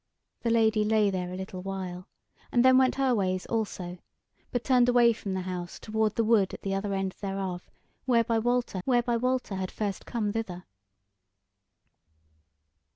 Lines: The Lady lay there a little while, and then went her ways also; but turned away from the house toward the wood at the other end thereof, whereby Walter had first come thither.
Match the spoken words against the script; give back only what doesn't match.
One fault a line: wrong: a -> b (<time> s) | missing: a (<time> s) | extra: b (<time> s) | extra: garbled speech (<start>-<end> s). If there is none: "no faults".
extra: whereby Walter (8.8 s)